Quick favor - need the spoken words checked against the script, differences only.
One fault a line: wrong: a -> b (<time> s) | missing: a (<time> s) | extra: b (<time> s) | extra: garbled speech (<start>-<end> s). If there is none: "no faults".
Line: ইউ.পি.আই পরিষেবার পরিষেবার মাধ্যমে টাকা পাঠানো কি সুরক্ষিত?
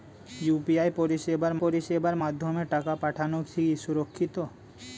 no faults